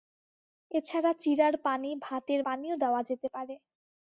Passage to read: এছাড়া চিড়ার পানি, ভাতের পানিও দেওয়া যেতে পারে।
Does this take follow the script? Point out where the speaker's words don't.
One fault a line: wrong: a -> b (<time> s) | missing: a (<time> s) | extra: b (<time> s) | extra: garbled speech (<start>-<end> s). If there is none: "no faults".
no faults